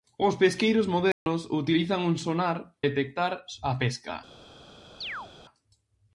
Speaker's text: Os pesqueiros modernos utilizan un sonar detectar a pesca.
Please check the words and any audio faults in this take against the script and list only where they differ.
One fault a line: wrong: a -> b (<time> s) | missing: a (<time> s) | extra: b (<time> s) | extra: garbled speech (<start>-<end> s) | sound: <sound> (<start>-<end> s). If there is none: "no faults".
sound: dropout (1.1-1.3 s)
sound: chirp (5.0-5.3 s)